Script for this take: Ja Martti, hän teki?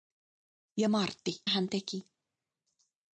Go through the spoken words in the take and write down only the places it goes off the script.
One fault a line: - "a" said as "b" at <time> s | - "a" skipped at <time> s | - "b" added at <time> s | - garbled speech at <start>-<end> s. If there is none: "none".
none